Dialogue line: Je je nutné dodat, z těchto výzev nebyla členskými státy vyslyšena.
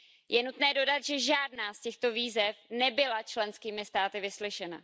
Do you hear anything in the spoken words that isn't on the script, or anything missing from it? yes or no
yes